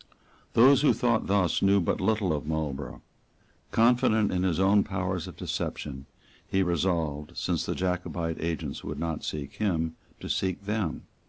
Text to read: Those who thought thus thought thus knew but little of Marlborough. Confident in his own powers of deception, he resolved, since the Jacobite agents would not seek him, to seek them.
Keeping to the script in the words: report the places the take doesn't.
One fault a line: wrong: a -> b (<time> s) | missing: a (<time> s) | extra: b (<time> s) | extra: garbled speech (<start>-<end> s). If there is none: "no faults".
missing: thought thus (1.6 s)